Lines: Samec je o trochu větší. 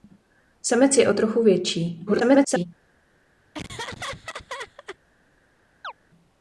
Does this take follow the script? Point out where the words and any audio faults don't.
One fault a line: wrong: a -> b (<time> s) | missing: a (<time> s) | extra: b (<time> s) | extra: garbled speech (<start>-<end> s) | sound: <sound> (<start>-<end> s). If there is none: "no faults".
extra: garbled speech (2.1-2.7 s)
sound: laugh (3.5-5.0 s)
sound: chirp (5.8-5.9 s)